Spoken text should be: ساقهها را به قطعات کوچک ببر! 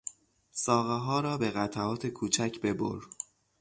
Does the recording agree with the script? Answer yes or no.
yes